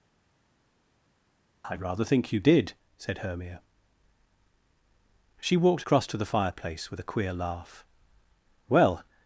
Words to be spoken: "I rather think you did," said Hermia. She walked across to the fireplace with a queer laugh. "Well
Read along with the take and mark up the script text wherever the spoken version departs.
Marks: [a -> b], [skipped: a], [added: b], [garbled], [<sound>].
"I rather think you did," said Hermia. She walked across to the fireplace with a queer laugh. "Well